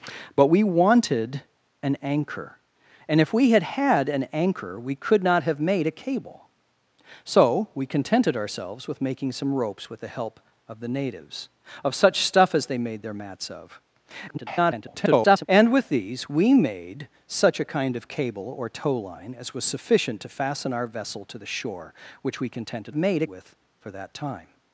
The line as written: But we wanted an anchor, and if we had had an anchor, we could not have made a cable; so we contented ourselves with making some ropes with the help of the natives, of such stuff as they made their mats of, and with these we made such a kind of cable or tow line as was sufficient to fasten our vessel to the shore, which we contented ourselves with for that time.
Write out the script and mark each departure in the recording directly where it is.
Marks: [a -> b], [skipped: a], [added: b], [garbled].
But we wanted an anchor, and if we had had an anchor, we could not have made a cable; so we contented ourselves with making some ropes with the help of the natives, of such stuff as they made their mats of, [garbled] and with these we made such a kind of cable or tow line as was sufficient to fasten our vessel to the shore, which we contented [ourselves -> made] with for that time.